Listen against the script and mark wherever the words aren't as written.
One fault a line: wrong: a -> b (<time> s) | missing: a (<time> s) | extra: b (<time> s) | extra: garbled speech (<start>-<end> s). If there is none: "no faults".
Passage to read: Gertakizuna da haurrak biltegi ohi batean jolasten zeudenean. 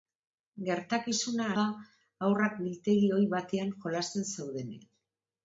no faults